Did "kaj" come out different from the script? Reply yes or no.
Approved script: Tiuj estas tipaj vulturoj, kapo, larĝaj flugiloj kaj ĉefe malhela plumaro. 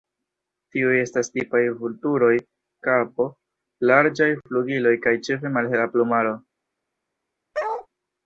no